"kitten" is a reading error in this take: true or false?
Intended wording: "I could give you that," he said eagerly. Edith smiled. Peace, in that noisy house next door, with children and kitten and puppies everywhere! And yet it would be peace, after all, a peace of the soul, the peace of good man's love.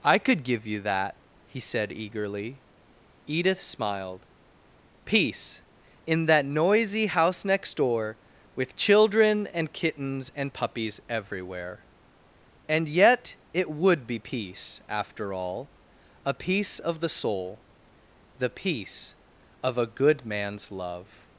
true